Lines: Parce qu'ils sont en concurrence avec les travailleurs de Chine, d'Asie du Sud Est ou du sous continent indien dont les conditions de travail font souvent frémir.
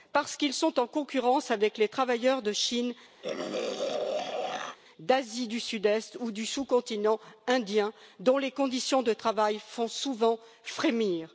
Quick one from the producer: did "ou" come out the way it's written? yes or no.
yes